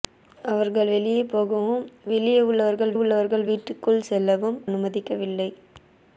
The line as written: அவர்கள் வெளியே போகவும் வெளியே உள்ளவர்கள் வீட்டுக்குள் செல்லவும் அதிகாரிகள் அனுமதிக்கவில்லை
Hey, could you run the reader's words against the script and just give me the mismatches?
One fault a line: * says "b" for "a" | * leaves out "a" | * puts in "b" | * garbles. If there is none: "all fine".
* puts in "உள்ளவர்கள்"
* leaves out "அதிகாரிகள்"